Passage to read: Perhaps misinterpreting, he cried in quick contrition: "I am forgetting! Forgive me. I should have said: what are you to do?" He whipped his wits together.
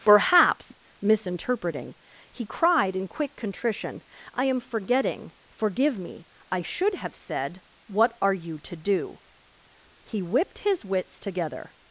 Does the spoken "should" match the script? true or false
true